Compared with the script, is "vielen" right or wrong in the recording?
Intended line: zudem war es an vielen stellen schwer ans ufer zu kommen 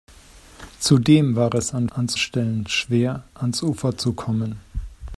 wrong